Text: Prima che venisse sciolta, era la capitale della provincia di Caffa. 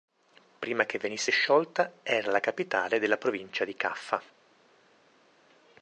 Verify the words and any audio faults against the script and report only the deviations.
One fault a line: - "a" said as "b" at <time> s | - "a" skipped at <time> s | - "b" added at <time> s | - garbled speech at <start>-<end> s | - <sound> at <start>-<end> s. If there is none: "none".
none